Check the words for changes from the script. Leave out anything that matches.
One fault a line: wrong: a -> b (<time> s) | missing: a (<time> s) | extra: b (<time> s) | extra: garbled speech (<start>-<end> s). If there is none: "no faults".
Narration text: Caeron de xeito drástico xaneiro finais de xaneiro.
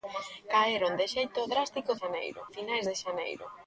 no faults